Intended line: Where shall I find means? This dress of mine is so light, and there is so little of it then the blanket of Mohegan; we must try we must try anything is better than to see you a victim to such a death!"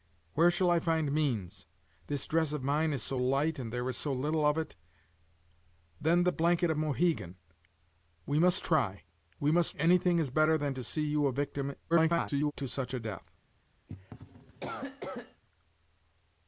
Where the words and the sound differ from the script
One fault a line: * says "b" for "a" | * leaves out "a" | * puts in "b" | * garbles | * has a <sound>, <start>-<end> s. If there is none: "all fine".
* leaves out "try"
* garbles
* has a cough, 13.9-15.4 s